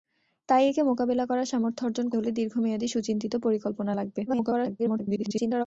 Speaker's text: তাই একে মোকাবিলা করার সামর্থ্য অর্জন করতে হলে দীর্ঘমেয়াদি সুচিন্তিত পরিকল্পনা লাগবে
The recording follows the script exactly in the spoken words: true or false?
false